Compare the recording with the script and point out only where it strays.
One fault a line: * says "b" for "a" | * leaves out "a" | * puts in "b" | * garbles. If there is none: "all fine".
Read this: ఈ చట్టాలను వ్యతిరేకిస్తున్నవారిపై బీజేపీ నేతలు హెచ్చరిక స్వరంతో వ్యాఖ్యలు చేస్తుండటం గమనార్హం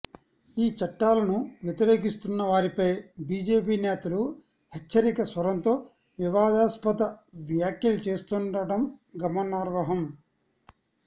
* puts in "వివాదాస్పద"